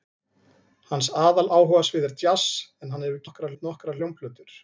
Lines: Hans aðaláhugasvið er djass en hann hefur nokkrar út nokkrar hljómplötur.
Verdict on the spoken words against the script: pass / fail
pass